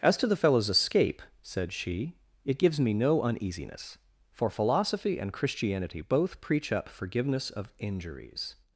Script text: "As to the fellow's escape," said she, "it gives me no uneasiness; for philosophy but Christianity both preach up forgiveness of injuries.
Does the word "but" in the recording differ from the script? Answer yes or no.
yes